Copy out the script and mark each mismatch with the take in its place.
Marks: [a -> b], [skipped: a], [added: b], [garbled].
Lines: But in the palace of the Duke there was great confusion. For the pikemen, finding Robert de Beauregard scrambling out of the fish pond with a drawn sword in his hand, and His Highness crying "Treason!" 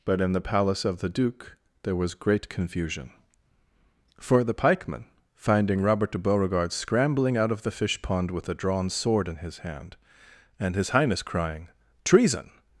But in the palace of the Duke there was great confusion. For the pikemen, finding Robert de Beauregard scrambling out of the fish pond with a drawn sword in his hand, and His Highness crying "Treason!"